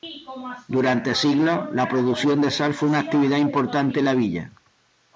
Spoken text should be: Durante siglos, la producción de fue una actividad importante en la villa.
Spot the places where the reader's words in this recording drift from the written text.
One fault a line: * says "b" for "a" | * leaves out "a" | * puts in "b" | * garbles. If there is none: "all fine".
* puts in "sal"